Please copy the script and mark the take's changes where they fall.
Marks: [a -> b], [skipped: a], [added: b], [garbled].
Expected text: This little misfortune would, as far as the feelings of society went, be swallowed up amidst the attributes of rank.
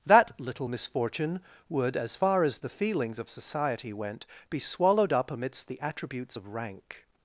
[This -> That] little misfortune would, as far as the feelings of society went, be swallowed up amidst the attributes of rank.